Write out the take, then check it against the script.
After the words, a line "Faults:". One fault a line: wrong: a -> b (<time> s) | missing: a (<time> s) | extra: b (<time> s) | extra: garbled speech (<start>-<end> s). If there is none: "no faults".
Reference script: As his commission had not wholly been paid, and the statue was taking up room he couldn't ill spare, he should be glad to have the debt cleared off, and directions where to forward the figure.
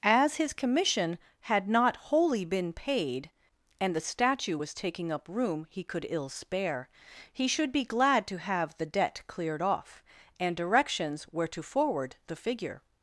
As his commission had not wholly been paid, and the statue was taking up room he could ill spare, he should be glad to have the debt cleared off, and directions where to forward the figure.
Faults:
wrong: couldn't -> could (5.8 s)